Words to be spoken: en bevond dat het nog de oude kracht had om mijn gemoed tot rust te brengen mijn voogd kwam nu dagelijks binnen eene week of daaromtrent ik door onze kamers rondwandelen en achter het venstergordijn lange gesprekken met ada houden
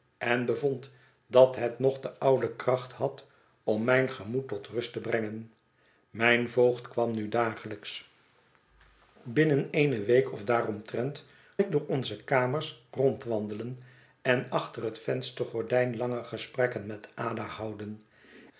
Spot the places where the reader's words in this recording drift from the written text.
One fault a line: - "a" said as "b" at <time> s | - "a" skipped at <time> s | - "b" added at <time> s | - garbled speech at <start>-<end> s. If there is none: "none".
none